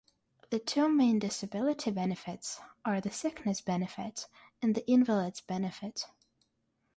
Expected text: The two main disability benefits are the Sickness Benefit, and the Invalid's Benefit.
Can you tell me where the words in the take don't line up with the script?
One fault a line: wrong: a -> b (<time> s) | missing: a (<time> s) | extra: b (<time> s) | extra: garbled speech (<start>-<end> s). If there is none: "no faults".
no faults